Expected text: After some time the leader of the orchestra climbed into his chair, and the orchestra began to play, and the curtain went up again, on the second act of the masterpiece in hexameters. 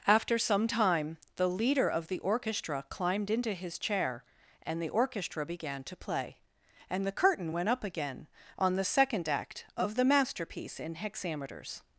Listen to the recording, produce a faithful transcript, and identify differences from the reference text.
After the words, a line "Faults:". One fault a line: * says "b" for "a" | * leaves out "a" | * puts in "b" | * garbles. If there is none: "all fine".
After some time the leader of the orchestra climbed into his chair, and the orchestra began to play, and the curtain went up again, on the second act of the masterpiece in hexameters.
Faults:
all fine